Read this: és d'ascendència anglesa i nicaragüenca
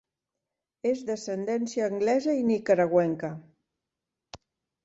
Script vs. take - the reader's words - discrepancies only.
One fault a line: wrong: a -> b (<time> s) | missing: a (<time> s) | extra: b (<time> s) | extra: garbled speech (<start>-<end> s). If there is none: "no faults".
no faults